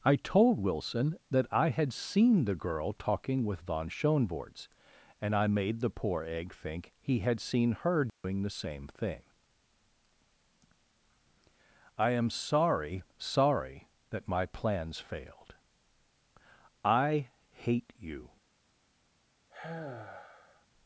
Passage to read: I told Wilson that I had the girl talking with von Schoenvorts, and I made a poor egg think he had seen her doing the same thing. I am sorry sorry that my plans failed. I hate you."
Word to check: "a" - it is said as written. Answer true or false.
false